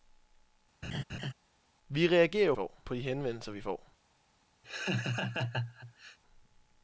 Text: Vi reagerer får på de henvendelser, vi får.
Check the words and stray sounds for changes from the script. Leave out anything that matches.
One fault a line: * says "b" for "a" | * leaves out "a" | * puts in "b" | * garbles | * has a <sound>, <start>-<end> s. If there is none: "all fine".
* has a laugh, 0.8-1.3 s
* has a laugh, 4.6-6.2 s